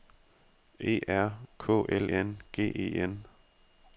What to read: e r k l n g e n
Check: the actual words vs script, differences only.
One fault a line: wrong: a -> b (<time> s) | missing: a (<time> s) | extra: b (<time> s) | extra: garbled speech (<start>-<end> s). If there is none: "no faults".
no faults